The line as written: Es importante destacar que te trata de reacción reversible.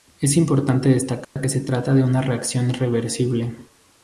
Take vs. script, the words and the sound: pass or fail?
fail